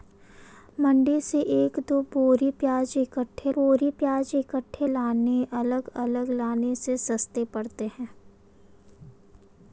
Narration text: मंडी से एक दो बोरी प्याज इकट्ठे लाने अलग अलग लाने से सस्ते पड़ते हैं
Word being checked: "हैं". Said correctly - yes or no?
yes